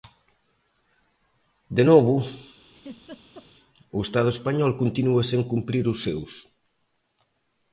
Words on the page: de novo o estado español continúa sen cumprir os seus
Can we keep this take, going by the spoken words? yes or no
yes